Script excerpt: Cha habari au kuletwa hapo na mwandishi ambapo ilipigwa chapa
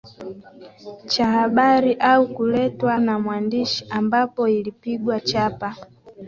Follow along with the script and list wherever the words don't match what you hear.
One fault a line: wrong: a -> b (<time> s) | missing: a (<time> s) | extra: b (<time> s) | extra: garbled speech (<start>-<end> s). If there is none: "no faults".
missing: hapo (3.0 s)